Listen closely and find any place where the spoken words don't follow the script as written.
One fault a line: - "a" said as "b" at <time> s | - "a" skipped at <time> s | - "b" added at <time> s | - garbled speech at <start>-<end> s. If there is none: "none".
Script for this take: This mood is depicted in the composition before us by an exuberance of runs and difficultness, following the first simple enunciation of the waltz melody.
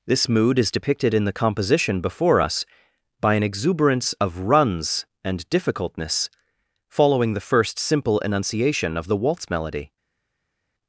none